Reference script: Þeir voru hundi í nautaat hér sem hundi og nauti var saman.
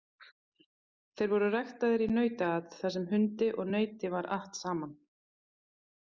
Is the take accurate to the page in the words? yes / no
no